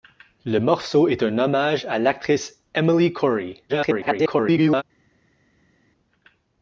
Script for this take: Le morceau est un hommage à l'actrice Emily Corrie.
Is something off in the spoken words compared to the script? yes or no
yes